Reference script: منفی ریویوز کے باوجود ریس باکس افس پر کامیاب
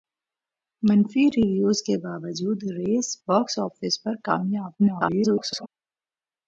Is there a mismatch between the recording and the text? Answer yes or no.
yes